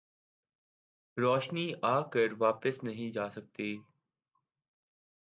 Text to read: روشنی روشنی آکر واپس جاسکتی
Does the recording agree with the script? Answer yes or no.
no